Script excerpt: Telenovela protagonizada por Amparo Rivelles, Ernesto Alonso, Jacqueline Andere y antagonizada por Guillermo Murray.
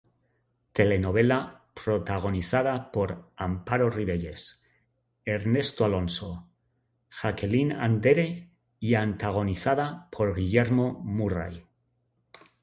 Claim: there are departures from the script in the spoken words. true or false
false